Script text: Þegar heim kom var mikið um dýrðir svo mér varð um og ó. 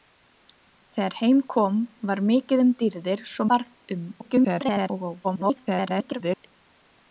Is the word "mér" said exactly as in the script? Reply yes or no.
no